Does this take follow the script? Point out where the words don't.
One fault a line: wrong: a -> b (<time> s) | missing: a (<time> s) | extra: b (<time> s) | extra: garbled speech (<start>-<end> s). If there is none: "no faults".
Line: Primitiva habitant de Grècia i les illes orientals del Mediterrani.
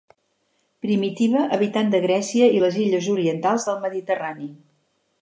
no faults